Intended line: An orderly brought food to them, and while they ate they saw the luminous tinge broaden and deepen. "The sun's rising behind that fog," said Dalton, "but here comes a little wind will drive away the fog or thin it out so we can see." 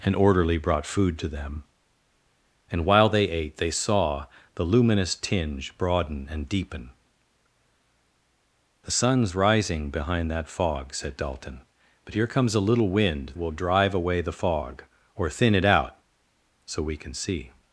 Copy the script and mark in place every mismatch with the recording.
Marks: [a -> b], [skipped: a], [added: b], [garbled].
An orderly brought food to them, and while they ate they saw the luminous tinge broaden and deepen. "The sun's rising behind that fog," said Dalton, "but here comes a little wind will drive away the fog or thin it out so we can see."